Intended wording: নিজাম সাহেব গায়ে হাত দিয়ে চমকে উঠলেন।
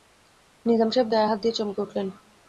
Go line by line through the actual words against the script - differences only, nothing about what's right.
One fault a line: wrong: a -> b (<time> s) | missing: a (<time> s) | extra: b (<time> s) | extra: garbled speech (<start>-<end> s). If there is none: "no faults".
no faults